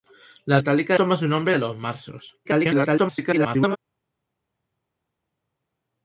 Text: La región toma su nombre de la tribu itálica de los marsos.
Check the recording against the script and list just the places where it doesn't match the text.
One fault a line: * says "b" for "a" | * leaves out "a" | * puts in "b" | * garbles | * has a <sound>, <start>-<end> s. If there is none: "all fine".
* says "itálica" for "región"
* leaves out "la tribu itálica"
* garbles